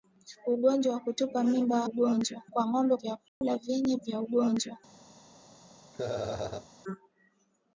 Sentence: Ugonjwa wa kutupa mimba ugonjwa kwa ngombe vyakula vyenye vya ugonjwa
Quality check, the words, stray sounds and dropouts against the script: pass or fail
fail